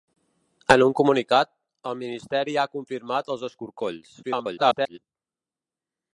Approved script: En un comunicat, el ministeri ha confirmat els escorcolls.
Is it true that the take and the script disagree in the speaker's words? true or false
true